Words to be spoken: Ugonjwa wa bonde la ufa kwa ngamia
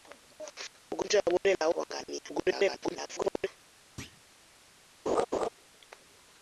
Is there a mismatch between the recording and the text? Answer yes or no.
yes